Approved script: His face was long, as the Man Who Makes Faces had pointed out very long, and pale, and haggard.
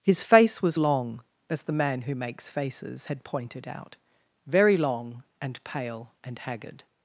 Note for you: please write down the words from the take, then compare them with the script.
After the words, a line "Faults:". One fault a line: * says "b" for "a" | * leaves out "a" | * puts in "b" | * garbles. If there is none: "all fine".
His face was long, as the Man Who Makes Faces had pointed out very long, and pale, and haggard.
Faults:
all fine